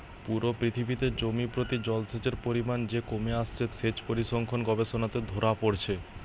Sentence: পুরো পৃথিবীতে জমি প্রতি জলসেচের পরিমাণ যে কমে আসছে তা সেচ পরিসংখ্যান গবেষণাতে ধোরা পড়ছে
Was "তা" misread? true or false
true